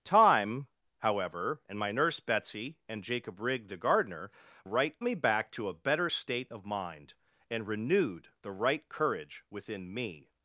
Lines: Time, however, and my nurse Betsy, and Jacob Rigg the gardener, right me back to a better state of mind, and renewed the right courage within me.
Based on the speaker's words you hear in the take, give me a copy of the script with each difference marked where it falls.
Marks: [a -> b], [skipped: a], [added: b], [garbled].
Time, however, and my nurse Betsy, and Jacob Rigg the gardener, right me back to a better state of mind, and renewed the right courage within me.